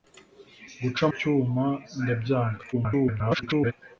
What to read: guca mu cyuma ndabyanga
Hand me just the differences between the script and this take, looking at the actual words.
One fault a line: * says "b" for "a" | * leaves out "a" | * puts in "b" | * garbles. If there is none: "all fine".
* leaves out "mu"
* garbles